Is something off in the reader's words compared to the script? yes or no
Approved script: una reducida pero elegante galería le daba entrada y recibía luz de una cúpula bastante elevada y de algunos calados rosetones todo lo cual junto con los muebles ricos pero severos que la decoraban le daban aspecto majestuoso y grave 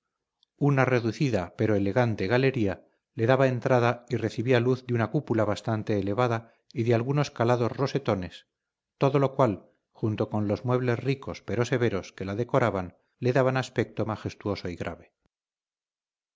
no